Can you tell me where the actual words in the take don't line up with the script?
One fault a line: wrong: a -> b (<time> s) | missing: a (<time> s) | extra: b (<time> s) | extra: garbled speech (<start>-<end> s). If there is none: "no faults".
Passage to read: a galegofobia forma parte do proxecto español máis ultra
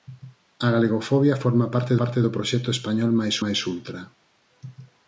extra: parte (2.0 s)
extra: máis (3.4 s)